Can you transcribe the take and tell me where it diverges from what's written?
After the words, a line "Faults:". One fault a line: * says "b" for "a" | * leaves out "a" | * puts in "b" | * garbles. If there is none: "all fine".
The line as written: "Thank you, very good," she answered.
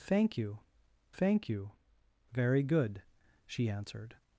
"Thank you thank you, very good," she answered.
Faults:
* puts in "thank you"